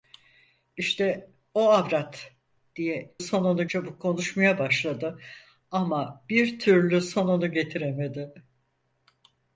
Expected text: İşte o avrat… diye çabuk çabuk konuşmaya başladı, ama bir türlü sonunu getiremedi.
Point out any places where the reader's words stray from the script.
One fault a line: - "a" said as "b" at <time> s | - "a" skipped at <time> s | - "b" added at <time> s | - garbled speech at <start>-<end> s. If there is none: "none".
- "çabuk" said as "sonunu" at 3.2 s